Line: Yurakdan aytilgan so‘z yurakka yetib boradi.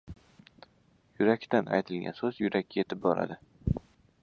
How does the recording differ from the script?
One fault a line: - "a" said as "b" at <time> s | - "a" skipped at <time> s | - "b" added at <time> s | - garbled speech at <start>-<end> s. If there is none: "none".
none